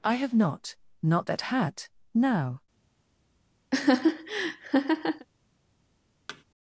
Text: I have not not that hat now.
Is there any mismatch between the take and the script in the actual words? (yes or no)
no